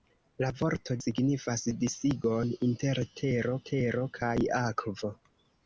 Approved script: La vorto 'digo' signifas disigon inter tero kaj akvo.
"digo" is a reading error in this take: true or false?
true